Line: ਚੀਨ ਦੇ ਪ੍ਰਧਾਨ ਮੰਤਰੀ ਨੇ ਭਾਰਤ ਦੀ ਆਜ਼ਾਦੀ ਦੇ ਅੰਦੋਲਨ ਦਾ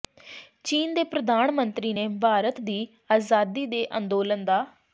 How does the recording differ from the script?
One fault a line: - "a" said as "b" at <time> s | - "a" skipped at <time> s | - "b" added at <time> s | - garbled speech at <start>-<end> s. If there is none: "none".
none